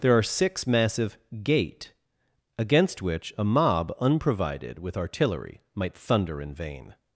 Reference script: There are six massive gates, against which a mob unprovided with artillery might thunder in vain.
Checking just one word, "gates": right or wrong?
wrong